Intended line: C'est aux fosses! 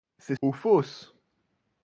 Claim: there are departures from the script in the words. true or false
false